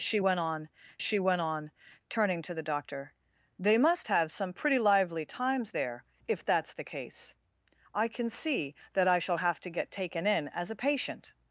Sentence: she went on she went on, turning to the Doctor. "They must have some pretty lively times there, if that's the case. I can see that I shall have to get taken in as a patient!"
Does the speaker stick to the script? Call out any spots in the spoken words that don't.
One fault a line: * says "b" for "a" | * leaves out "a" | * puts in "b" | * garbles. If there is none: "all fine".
all fine